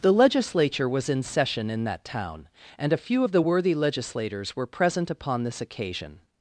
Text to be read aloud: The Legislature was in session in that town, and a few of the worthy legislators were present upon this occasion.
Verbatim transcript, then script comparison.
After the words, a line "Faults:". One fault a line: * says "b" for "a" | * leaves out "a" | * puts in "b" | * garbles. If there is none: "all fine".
The Legislature was in session in that town, and a few of the worthy legislators were present upon this occasion.
Faults:
all fine